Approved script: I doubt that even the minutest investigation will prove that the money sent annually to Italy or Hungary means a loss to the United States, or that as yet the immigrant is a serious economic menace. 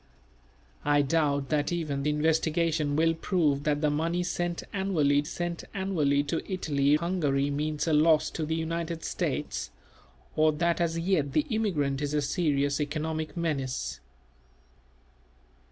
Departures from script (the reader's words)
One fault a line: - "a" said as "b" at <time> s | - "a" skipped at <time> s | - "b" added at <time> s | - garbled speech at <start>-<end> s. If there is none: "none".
- "the minutest" skipped at 2.0 s
- "sent annually" added at 5.2 s
- "or" skipped at 7.0 s